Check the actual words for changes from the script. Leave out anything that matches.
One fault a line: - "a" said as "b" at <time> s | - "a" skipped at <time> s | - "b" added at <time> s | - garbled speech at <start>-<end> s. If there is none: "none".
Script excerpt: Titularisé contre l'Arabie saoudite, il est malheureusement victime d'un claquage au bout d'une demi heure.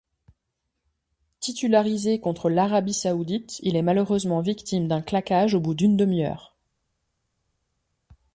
none